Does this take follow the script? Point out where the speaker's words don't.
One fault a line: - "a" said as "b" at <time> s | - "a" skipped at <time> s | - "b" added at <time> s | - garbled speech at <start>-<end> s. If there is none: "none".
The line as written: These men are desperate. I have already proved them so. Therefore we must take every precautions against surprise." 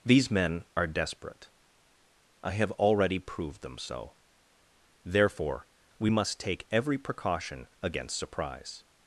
- "precautions" said as "precaution" at 7.0 s